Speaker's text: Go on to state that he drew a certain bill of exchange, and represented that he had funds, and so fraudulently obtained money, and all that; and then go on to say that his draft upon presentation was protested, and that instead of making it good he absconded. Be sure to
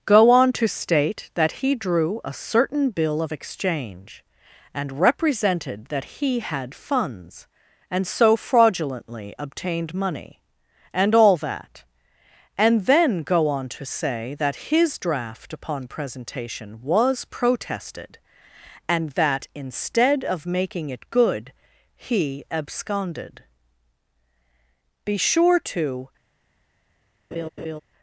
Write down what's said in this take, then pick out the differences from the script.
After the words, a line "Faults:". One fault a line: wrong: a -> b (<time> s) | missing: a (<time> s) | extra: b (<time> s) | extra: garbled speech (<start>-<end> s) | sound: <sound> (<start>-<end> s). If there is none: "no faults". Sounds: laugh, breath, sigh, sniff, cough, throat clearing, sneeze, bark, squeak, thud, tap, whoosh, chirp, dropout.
Go on to state that he drew a certain bill of exchange, and represented that he had funds, and so fraudulently obtained money, and all that; and then go on to say that his draft upon presentation was protested, and that instead of making it good he absconded. Be sure to
Faults:
sound: laugh (27.3-27.8 s)